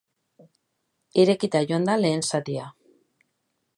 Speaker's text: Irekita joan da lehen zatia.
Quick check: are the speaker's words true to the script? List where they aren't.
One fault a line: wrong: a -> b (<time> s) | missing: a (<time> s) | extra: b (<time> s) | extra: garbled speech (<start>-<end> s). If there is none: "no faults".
no faults